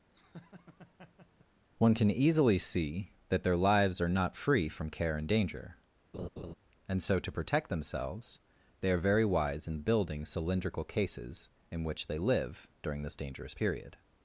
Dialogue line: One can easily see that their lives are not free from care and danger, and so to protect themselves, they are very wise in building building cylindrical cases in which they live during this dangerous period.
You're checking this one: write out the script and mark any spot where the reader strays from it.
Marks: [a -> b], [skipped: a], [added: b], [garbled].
One can easily see that their lives are not free from care and danger, and so to protect themselves, they are very wise in building [skipped: building] cylindrical cases in which they live during this dangerous period.